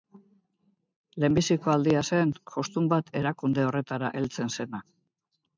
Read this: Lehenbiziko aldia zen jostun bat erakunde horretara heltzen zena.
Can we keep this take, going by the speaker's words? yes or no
yes